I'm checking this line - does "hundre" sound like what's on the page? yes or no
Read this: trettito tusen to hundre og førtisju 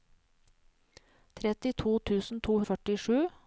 no